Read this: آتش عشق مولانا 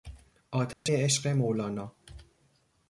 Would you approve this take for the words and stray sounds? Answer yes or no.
no